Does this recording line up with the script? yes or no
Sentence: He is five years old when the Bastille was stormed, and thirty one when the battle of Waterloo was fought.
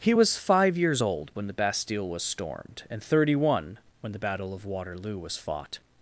no